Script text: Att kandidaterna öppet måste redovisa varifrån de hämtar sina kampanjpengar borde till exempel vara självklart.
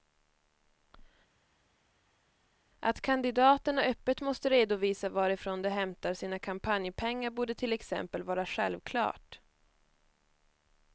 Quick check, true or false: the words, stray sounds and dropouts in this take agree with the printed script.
true